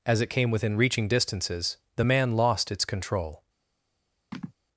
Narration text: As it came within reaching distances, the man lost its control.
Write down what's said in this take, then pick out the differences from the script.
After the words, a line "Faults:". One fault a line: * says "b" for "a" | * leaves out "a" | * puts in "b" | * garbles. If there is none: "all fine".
As it came within reaching distances, the man lost its control.
Faults:
all fine